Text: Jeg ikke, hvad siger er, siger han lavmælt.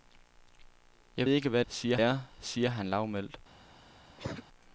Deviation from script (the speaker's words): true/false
false